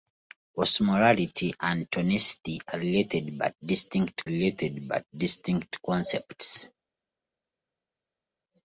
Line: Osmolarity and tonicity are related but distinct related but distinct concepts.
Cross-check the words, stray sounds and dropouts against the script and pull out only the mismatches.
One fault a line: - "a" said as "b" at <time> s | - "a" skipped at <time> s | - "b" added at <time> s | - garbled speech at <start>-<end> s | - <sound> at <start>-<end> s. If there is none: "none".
none